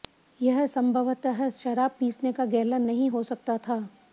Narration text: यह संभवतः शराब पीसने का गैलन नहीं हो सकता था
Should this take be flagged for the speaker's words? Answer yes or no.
no